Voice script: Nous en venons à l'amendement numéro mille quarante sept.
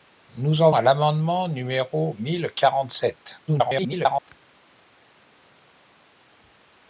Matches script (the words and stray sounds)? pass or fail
fail